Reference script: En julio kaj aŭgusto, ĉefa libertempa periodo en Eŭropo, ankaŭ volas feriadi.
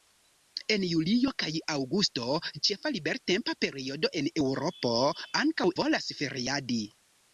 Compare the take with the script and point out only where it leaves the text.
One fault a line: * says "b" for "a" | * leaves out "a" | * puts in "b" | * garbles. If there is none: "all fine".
all fine